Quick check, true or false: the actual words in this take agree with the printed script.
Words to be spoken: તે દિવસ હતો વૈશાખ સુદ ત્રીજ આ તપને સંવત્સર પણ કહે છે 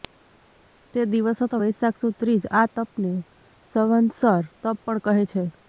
false